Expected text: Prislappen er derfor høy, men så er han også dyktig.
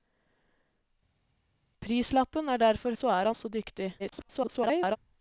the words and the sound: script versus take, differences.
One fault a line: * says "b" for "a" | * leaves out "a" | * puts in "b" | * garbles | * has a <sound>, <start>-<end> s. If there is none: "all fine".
* leaves out "høy men"
* leaves out "han"
* garbles